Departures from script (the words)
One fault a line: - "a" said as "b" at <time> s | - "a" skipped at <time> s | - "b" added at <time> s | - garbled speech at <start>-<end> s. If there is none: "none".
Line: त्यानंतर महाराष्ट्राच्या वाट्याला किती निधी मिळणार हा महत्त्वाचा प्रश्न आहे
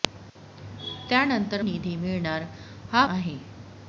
- "महाराष्ट्राच्या वाट्याला किती" skipped at 1.6 s
- "महत्त्वाचा प्रश्न" skipped at 3.0 s